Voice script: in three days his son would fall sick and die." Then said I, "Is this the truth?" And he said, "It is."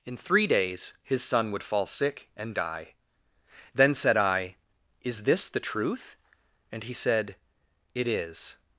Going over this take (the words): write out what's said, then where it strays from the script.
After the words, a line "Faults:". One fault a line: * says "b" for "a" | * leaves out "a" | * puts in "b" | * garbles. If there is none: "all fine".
in three days his son would fall sick and die." Then said I, "Is this the truth?" And he said, "It is."
Faults:
all fine